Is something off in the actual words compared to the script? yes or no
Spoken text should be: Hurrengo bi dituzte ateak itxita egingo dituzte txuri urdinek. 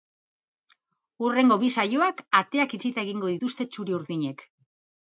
yes